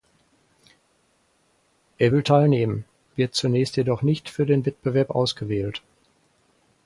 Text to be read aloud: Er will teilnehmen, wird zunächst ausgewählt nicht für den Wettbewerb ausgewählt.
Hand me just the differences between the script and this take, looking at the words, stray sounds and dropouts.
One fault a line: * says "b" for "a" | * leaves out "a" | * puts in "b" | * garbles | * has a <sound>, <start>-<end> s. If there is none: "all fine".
* says "jedoch" for "ausgewählt"